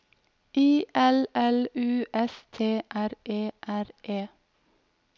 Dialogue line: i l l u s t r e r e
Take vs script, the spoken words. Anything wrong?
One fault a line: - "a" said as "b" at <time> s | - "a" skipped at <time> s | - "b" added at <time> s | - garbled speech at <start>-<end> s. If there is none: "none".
none